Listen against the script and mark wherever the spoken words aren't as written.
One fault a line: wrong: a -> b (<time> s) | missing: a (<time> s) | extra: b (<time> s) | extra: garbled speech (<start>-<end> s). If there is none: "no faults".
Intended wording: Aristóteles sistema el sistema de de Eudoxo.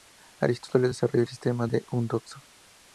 wrong: sistema -> desarrolló (0.9 s)
missing: de (1.8 s)